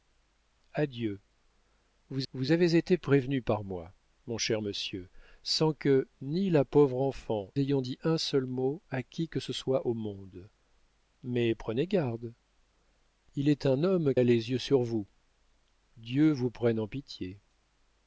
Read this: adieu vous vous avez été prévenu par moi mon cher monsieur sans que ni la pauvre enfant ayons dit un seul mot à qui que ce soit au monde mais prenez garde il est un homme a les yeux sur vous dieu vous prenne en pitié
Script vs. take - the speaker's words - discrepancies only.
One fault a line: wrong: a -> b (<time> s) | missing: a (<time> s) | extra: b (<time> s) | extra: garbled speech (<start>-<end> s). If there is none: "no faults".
no faults